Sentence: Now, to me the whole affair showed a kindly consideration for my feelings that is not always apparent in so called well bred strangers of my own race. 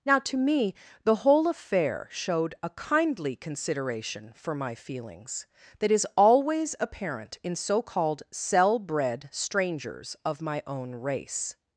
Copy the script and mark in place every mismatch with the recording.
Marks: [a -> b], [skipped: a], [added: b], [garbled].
Now, to me the whole affair showed a kindly consideration for my feelings that is [skipped: not] always apparent in so called [well -> cell] bred strangers of my own race.